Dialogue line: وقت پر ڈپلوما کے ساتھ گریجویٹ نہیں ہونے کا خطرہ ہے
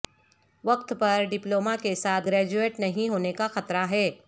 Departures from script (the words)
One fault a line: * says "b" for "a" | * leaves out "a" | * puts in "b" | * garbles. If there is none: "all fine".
all fine